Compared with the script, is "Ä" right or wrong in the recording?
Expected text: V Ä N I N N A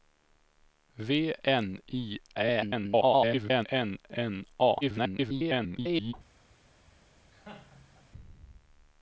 wrong